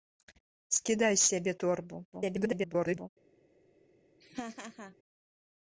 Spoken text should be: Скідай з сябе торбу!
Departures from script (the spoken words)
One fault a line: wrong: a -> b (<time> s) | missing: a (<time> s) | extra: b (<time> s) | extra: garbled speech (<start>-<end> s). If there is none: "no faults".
extra: garbled speech (2.1-3.1 s)